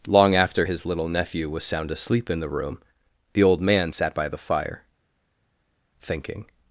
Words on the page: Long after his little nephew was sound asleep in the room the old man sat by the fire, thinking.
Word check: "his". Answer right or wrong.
right